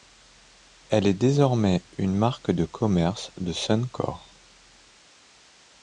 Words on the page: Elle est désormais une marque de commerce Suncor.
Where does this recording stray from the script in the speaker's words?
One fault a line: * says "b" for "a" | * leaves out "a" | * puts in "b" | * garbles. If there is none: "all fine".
* puts in "de"